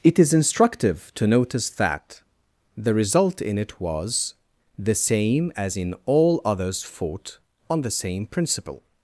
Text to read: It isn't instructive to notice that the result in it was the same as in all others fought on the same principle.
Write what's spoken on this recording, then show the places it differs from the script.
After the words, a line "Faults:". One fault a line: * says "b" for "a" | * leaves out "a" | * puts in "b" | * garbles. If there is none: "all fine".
It is instructive to notice that the result in it was the same as in all others fought on the same principle.
Faults:
* says "is" for "isn't"